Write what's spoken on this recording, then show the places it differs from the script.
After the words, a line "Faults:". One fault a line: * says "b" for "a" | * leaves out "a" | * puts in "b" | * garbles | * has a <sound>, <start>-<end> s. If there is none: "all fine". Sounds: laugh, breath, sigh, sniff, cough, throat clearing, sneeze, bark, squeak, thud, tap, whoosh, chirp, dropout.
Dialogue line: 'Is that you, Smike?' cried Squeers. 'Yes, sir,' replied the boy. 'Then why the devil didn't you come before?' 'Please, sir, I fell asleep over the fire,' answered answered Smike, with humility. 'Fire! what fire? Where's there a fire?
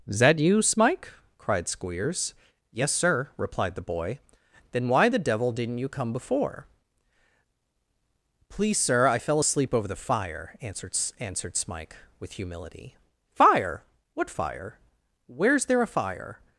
'Is that you, Smike?' cried Squeers. 'Yes, sir,' replied the boy. 'Then why the devil didn't you come before?' 'Please, sir, I fell asleep over the fire,' answered answered Smike, with humility. 'Fire! what fire? Where's there a fire?
Faults:
all fine